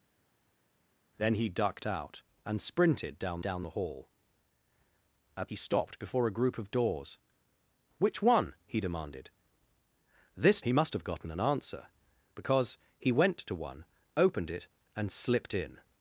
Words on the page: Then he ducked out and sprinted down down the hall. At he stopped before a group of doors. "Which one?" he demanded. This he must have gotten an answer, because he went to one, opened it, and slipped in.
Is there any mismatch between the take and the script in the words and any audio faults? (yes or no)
no